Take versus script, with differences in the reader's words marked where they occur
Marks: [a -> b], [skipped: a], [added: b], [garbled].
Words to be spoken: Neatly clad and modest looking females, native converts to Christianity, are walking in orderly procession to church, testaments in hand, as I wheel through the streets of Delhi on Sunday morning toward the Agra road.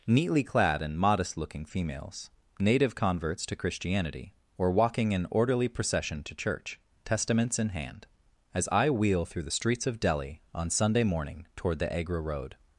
Neatly clad and modest looking females, native converts to Christianity, [are -> or] walking in orderly procession to church, testaments in hand, as I wheel through the streets of Delhi on Sunday morning toward the Agra road.